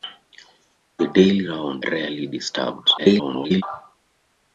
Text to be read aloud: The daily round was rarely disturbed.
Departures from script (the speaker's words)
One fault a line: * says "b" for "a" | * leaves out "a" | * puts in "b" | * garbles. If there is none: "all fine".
* leaves out "was"
* garbles